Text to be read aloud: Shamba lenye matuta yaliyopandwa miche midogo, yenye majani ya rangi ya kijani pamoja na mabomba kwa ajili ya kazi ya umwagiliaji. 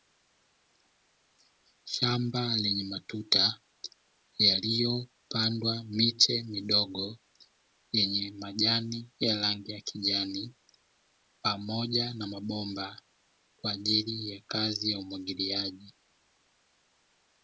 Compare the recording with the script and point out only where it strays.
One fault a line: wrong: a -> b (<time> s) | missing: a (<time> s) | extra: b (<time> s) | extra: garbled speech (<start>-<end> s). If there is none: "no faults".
no faults